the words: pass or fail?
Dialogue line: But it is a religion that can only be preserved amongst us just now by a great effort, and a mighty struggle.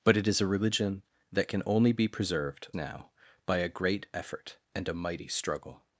fail